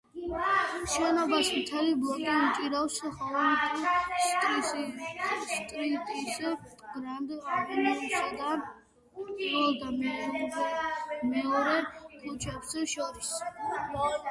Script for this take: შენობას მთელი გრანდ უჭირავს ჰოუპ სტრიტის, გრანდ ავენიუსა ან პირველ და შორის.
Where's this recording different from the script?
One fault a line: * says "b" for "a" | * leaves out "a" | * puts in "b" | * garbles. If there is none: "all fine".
* says "ბლოკი" for "გრანდ"
* says "და" for "ან"
* puts in "მეორე ქუჩებს"